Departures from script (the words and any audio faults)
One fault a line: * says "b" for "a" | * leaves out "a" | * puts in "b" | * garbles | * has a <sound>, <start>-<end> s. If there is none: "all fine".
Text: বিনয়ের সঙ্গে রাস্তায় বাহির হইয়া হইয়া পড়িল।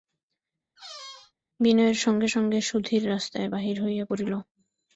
* has a squeak, 0.8-1.3 s
* puts in "সঙ্গে সুধীর"
* leaves out "হইয়া"